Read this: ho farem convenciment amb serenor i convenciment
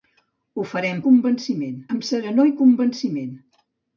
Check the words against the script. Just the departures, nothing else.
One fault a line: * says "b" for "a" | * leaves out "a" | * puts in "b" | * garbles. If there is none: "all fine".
all fine